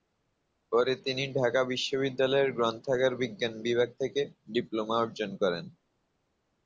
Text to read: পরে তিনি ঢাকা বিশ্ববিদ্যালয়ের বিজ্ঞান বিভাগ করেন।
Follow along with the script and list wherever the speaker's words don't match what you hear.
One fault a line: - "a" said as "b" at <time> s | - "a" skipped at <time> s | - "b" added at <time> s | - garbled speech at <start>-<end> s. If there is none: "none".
- "গ্রন্থাগার" added at 2.5 s
- "থেকে ডিপ্লোমা অর্জন" added at 4.0 s